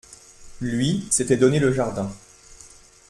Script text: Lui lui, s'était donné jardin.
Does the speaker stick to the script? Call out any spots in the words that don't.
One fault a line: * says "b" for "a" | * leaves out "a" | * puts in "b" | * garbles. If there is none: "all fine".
* leaves out "lui"
* puts in "le"